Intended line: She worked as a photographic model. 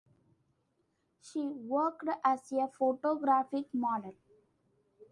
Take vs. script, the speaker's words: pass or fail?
pass